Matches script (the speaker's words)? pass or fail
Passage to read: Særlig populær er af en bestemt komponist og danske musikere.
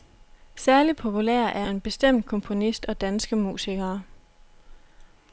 pass